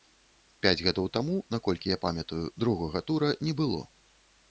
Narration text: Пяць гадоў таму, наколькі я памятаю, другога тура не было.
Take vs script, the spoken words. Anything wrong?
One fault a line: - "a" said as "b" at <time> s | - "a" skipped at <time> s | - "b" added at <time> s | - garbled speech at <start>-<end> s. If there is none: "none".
none